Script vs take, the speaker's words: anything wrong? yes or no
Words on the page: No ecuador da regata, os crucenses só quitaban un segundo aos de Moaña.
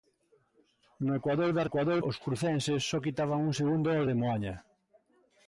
yes